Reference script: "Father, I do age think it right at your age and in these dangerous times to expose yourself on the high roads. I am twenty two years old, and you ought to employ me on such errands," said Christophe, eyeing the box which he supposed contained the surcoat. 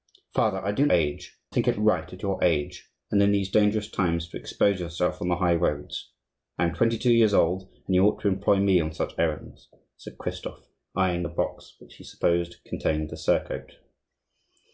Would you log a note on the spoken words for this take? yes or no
no